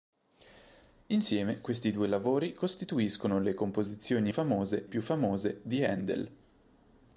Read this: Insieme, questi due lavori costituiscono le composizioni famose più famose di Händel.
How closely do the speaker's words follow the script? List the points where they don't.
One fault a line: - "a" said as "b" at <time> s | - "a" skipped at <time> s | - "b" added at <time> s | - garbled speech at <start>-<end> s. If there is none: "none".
none